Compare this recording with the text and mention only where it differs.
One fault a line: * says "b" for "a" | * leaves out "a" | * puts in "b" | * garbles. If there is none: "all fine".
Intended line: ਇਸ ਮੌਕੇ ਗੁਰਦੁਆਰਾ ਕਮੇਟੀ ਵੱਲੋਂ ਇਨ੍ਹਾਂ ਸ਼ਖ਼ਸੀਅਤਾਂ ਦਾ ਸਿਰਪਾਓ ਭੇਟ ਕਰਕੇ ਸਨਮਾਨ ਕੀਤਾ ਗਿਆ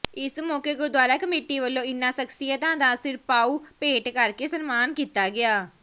all fine